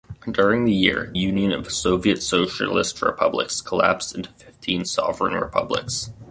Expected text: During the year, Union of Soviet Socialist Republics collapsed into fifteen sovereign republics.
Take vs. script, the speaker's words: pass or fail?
pass